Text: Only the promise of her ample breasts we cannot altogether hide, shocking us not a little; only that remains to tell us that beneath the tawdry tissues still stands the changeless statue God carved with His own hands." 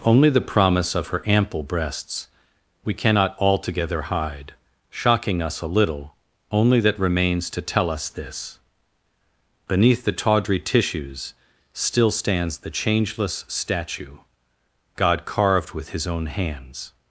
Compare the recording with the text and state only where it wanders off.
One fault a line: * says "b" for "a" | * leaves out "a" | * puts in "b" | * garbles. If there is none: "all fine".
* leaves out "not"
* says "this" for "that"